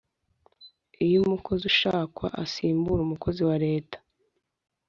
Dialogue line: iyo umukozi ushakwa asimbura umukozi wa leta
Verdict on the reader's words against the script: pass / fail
pass